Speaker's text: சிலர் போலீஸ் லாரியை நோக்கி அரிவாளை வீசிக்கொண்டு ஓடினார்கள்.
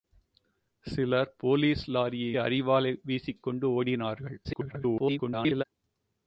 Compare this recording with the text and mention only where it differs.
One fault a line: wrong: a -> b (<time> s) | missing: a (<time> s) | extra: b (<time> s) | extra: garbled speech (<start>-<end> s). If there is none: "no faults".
missing: நோக்கி (2.4 s)
extra: garbled speech (4.4-5.6 s)